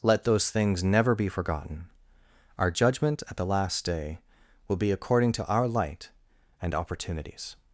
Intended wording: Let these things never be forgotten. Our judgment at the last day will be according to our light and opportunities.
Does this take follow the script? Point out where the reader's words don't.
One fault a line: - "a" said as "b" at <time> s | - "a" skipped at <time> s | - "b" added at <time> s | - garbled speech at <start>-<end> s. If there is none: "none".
- "these" said as "those" at 0.2 s